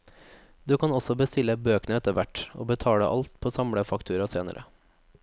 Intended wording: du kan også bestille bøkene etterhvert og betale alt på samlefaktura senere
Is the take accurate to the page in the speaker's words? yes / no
yes